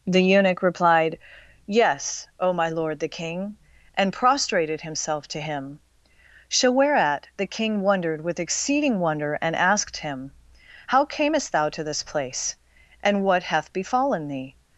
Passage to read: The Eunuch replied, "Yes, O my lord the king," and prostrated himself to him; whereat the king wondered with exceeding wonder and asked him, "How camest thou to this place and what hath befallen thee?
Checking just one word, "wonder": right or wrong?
right